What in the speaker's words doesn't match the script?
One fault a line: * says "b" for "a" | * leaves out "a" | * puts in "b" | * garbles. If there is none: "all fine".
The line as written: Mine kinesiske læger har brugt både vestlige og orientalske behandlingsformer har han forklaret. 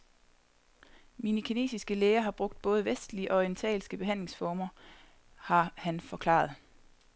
all fine